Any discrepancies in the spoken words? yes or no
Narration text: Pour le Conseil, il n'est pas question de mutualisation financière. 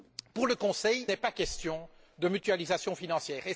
yes